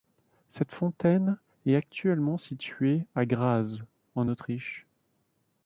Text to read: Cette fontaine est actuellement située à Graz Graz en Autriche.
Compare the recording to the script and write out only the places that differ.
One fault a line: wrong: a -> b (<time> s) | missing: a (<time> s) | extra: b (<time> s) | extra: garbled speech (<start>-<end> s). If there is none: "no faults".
missing: Graz (3.8 s)